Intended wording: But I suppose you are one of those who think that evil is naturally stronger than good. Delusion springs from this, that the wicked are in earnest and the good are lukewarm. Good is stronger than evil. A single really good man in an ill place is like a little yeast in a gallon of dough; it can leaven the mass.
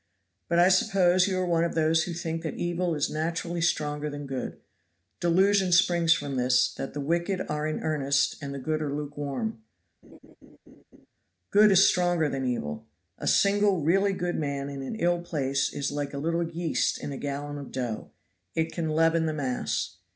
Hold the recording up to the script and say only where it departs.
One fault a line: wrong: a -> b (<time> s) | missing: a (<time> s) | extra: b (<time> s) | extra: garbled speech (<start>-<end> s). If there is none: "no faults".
no faults